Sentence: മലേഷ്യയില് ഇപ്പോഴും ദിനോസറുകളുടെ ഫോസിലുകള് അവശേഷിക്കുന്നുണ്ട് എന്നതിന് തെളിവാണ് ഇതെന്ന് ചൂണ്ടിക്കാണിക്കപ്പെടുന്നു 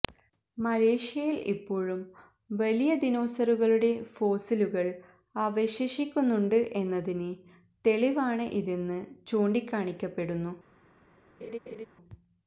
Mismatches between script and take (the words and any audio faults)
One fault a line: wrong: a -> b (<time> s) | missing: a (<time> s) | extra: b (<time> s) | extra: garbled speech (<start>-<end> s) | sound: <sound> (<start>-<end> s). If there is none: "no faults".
extra: വലിയ (2.5 s)
sound: laugh (11.4-11.9 s)